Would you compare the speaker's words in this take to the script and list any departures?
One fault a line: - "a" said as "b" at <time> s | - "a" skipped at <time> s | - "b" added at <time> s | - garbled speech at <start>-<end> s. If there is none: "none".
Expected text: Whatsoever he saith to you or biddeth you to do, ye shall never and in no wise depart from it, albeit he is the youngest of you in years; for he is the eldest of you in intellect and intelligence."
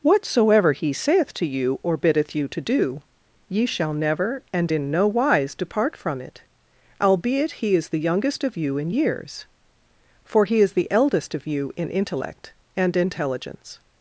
none